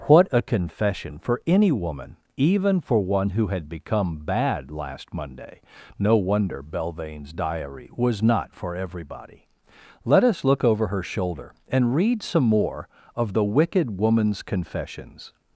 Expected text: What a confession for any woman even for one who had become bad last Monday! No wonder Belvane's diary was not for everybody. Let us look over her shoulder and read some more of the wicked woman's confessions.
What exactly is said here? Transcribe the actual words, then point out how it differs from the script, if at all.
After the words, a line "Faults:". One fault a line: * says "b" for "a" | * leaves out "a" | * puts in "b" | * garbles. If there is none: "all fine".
What a confession for any woman even for one who had become bad last Monday! No wonder Belvane's diary was not for everybody. Let us look over her shoulder and read some more of the wicked woman's confessions.
Faults:
all fine